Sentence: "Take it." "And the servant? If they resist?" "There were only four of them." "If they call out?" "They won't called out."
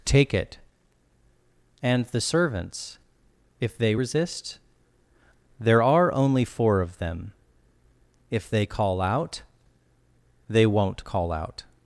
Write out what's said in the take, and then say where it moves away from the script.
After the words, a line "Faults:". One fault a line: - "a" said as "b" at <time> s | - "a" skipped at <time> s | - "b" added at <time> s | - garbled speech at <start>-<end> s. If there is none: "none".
"Take it." "And the servants? If they resist?" "There are only four of them." "If they call out?" "They won't call out."
Faults:
- "servant" said as "servants" at 2.2 s
- "were" said as "are" at 5.8 s
- "called" said as "call" at 11.0 s